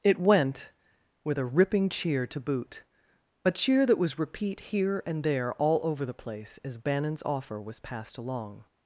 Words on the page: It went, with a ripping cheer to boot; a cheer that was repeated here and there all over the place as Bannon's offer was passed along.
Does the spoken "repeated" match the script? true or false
false